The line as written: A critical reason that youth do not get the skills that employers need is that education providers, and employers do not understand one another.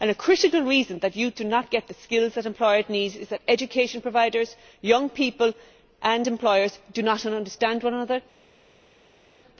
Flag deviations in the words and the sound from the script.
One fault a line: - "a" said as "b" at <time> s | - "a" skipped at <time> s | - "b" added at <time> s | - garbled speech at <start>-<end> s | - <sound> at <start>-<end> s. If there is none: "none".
- "young people" added at 4.8 s